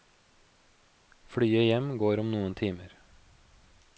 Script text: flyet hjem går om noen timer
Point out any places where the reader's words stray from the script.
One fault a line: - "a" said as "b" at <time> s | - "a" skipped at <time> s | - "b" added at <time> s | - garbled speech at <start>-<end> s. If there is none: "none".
none